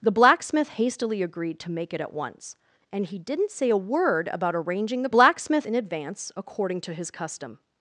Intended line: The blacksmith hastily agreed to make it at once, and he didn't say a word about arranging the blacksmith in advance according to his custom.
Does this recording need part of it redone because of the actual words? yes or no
no